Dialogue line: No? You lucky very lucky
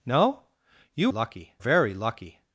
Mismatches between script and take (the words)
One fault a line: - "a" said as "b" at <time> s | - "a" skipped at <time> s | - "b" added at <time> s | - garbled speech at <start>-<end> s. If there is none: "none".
none